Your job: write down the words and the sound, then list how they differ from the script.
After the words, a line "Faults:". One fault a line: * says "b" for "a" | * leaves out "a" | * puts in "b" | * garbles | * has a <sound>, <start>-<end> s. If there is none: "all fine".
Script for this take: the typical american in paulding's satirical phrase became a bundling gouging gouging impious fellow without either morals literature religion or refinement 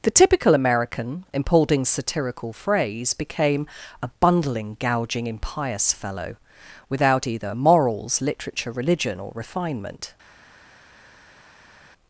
the typical american in paulding's satirical phrase became a bundling gouging impious fellow without either morals literature religion or refinement
Faults:
* leaves out "gouging"